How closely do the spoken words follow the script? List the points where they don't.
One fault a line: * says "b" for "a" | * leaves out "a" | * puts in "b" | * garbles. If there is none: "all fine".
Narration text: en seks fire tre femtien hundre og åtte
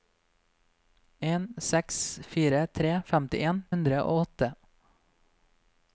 all fine